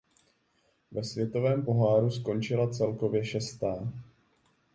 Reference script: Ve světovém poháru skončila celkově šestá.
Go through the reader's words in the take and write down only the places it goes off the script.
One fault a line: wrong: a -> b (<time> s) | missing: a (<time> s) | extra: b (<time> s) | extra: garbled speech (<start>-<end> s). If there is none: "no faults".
no faults